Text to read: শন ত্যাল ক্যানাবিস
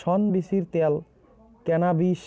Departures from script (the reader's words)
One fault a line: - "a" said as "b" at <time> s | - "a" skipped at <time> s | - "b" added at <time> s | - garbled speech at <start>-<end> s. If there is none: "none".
- "বীচির" added at 0.3 s